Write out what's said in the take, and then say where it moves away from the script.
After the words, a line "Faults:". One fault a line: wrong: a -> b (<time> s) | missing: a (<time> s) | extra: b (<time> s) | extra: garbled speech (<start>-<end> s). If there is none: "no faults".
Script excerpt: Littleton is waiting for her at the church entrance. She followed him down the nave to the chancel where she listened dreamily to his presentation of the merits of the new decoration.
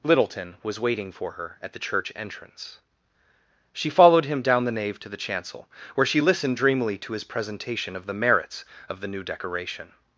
Littleton was waiting for her at the church entrance. She followed him down the nave to the chancel where she listened dreamily to his presentation of the merits of the new decoration.
Faults:
wrong: is -> was (0.6 s)